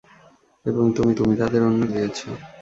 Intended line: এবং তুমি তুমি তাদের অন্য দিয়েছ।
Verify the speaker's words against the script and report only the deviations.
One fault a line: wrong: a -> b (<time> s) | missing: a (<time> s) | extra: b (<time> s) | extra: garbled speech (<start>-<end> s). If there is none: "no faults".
no faults